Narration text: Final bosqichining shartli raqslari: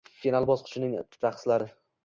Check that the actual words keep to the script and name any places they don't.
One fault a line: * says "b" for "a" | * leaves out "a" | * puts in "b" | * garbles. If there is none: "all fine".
* leaves out "shartli"